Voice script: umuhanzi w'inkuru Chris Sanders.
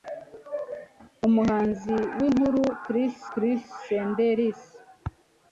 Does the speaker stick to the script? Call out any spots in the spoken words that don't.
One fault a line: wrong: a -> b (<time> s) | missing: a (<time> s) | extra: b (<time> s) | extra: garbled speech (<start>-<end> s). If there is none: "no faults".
extra: Chris (3.3 s)